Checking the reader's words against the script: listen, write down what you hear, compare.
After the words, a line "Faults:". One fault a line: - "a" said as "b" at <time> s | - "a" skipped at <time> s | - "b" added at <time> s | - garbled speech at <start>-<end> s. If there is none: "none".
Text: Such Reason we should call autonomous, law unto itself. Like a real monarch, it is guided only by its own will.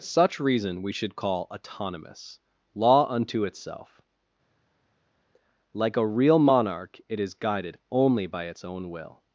Such Reason we should call autonomous, law unto itself. Like a real monarch, it is guided only by its own will.
Faults:
none